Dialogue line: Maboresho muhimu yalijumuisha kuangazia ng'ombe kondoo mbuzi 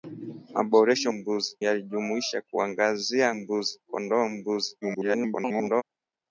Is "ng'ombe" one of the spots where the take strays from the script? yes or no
yes